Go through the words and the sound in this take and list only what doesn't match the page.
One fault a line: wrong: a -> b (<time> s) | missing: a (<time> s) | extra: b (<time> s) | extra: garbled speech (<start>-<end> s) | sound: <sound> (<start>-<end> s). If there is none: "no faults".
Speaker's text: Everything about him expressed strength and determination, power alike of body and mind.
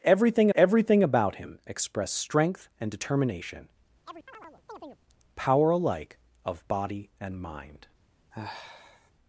extra: everything (0.5 s)
sound: chirp (4.0-5.0 s)
sound: sigh (8.3-9.1 s)